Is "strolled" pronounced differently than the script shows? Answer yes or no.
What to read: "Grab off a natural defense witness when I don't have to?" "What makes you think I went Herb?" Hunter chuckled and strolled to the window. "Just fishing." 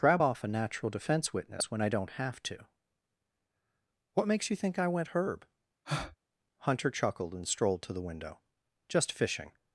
no